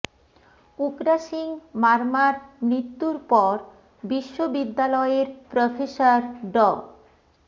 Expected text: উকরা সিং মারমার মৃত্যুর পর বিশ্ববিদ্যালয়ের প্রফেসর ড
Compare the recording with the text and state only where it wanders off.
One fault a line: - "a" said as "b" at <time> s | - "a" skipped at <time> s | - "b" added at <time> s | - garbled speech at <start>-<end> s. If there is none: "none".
none